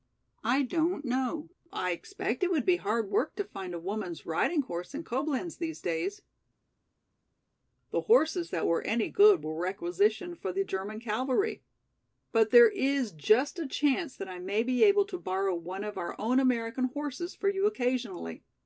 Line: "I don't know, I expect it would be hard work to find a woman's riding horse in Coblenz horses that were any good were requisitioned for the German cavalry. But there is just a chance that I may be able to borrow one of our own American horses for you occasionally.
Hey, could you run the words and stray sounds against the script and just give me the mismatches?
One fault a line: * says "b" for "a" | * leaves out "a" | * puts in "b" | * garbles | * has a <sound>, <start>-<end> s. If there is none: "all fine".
* puts in "these days The"